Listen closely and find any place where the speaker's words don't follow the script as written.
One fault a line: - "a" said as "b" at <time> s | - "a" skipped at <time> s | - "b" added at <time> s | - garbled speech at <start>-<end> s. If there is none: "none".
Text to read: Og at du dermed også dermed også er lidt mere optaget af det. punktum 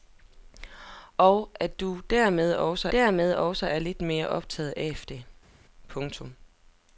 none